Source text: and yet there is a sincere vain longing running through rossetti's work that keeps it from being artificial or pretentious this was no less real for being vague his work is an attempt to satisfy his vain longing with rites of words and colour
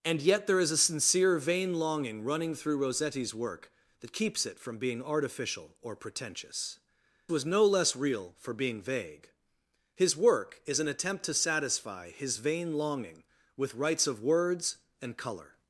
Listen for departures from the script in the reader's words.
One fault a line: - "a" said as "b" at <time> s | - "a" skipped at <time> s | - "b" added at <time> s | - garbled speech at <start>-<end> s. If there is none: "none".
- "this" skipped at 6.8 s